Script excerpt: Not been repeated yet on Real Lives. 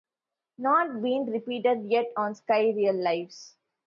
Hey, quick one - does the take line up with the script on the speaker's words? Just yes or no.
no